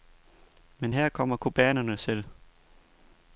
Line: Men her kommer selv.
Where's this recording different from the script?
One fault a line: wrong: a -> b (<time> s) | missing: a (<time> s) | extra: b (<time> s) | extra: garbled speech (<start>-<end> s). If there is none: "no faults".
extra: cubanerne (1.4 s)